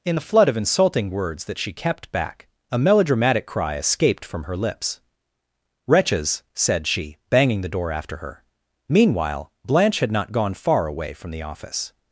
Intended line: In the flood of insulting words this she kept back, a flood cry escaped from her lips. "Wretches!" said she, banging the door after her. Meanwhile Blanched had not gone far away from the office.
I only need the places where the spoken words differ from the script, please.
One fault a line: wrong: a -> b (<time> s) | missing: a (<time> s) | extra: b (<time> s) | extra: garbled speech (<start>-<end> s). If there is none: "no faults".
wrong: this -> that (1.4 s)
wrong: flood -> melodramatic (2.8 s)
wrong: Blanched -> Blanche (9.7 s)